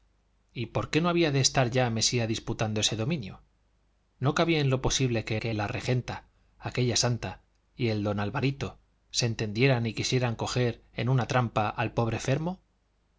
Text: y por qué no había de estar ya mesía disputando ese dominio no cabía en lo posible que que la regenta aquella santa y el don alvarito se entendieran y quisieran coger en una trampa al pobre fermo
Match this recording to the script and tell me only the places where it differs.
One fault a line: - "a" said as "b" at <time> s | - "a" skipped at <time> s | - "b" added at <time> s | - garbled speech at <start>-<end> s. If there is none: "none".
none